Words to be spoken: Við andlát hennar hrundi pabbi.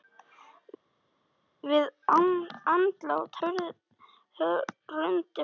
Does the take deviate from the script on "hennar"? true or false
true